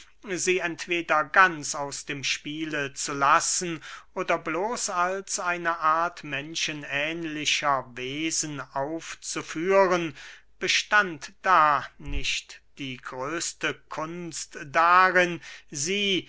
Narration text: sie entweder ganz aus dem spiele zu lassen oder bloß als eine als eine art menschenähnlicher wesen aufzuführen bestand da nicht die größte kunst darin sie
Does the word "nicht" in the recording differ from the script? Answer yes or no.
no